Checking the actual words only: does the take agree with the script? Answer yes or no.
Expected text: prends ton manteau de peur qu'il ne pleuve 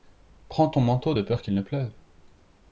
yes